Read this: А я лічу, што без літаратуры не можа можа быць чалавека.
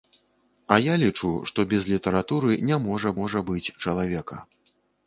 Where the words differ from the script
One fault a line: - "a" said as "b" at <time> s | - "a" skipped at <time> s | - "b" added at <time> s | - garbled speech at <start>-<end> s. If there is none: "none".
none